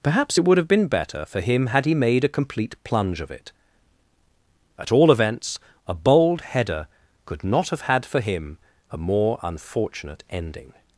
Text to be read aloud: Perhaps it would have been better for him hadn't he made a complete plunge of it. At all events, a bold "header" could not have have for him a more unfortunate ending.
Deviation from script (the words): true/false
true